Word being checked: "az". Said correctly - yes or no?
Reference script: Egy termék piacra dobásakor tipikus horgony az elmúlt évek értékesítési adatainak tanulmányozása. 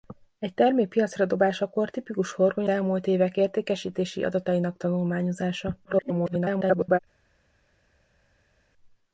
no